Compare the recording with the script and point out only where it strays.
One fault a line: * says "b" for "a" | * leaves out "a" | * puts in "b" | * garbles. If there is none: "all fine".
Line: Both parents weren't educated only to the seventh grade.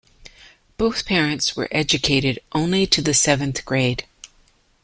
* says "were" for "weren't"